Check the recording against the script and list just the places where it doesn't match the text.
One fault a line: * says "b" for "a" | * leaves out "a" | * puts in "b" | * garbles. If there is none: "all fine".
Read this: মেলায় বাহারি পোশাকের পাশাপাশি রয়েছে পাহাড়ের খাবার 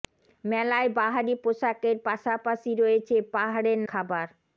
all fine